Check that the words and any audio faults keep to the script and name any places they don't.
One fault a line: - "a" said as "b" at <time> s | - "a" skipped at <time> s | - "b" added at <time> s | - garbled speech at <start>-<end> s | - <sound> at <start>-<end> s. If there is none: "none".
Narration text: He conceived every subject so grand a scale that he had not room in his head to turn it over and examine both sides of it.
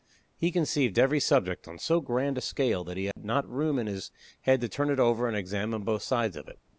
- "on" added at 1.7 s
- dropout at 3.1-3.2 s